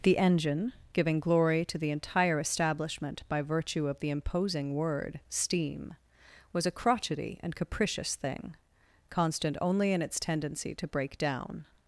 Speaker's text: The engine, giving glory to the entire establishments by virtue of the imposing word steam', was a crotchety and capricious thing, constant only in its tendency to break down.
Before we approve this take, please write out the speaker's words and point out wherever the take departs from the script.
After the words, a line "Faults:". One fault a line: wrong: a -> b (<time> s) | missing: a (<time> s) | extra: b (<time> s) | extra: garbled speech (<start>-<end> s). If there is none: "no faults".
The engine, giving glory to the entire establishment by virtue of the imposing word steam', was a crotchety and capricious thing, constant only in its tendency to break down.
Faults:
wrong: establishments -> establishment (2.4 s)